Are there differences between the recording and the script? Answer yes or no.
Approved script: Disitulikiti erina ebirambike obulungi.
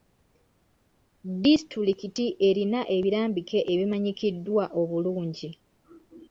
yes